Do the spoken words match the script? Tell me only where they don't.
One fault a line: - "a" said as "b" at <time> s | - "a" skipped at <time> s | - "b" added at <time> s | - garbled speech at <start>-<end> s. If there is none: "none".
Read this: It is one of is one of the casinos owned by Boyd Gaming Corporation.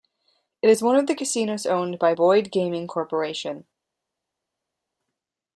- "is one of" skipped at 1.1 s